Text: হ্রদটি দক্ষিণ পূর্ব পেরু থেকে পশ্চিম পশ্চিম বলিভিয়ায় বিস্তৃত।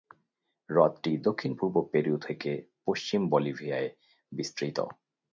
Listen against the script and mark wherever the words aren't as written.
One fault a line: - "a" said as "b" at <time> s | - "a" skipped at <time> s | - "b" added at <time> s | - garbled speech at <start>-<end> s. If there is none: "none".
- "পশ্চিম" skipped at 3.2 s